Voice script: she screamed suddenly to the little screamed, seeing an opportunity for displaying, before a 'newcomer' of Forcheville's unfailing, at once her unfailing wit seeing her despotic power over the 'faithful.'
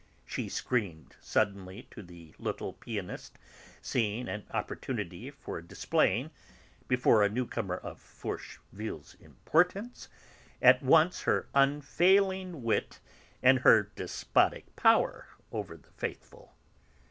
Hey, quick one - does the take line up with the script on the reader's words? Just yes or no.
no